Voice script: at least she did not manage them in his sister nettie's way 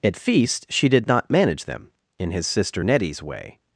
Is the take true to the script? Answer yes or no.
no